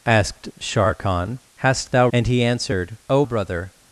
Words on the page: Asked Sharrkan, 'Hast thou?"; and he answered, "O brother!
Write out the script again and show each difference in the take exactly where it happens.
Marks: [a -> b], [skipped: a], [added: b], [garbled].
Asked Sharrkan, 'Hast thou?"; and he answered, "O brother!